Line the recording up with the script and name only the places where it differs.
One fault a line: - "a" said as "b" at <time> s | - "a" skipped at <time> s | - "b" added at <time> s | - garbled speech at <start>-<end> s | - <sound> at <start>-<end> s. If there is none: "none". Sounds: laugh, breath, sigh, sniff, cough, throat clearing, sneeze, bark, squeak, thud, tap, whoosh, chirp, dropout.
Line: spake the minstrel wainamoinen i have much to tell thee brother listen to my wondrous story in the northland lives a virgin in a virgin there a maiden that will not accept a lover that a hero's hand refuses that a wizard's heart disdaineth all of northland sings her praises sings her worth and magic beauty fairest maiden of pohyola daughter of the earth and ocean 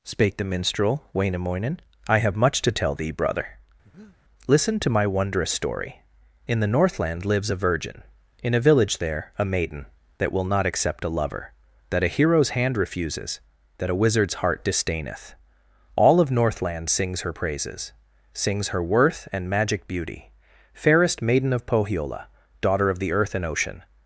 - breath at 3.8-4.2 s
- "virgin" said as "village" at 8.6 s